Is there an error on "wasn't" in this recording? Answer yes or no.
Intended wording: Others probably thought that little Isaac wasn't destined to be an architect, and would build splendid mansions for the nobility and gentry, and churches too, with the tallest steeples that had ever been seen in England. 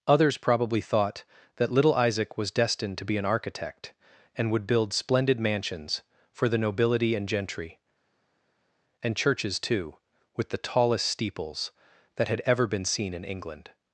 yes